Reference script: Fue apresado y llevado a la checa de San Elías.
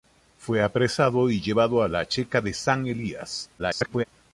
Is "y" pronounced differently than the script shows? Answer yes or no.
no